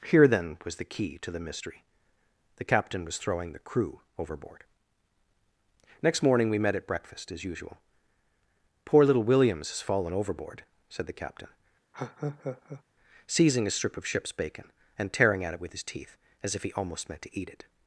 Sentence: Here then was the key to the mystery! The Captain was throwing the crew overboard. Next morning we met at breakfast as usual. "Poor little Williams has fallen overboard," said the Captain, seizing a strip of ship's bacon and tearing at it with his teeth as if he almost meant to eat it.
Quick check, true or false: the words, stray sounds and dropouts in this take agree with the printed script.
false